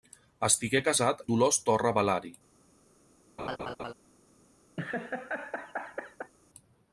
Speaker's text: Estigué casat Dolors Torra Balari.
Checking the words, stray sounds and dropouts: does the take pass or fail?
fail